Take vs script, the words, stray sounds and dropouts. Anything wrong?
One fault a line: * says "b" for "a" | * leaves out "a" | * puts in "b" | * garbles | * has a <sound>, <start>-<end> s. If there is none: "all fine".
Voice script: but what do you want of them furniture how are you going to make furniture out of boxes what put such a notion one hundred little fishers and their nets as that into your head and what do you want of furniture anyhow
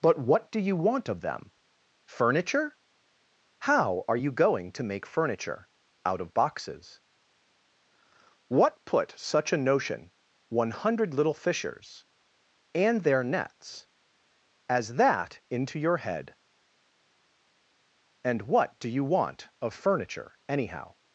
all fine